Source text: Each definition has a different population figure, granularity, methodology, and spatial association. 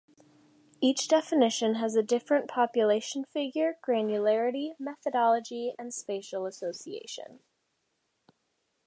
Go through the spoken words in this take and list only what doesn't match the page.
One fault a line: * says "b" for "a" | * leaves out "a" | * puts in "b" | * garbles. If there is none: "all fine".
all fine